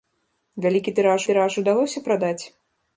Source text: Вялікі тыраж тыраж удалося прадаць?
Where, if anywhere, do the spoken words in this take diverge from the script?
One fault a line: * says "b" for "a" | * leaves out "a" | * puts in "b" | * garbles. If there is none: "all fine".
all fine